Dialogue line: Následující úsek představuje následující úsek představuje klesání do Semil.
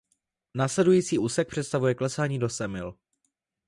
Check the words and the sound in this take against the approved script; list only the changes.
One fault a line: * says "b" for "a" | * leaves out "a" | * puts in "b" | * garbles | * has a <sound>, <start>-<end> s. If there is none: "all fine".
* leaves out "následující úsek představuje"